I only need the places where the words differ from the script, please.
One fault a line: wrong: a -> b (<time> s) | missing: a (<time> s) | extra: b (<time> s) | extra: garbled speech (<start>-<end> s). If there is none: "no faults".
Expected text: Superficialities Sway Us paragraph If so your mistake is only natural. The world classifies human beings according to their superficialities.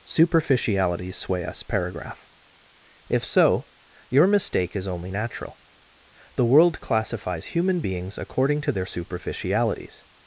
no faults